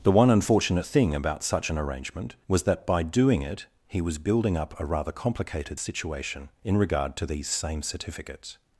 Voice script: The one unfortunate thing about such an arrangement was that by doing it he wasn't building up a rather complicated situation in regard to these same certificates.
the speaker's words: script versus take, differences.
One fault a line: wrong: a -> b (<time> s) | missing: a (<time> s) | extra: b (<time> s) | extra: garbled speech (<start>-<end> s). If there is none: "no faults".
wrong: wasn't -> was (4.0 s)